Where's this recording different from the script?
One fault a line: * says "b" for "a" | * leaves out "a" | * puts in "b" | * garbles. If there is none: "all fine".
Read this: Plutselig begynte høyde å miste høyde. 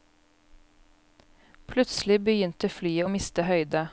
* says "flyet" for "høyde"